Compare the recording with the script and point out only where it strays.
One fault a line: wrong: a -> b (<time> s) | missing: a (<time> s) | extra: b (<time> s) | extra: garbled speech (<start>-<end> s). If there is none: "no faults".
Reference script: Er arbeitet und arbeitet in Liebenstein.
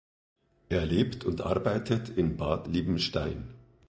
wrong: arbeitet -> lebt (0.9 s)
extra: Bad (2.4 s)